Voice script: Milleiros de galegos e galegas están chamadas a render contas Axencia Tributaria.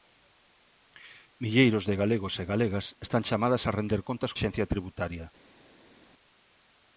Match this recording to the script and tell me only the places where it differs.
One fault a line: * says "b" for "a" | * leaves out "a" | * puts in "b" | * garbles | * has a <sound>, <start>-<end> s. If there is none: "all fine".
all fine